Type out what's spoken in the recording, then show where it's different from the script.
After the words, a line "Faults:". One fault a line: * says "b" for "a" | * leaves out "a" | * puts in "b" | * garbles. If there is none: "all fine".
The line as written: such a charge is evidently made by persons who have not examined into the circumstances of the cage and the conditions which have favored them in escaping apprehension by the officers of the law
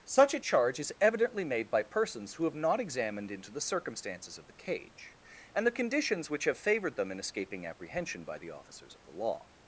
such a charge is evidently made by persons who have not examined into the circumstances of the cage and the conditions which have favored them in escaping apprehension by the officers of the law
Faults:
all fine